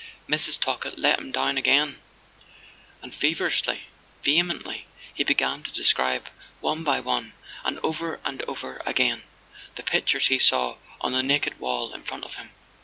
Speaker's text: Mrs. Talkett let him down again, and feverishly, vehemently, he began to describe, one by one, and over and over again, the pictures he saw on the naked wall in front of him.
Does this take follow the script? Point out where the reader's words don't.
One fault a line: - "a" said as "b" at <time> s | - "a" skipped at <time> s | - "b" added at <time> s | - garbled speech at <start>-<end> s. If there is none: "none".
none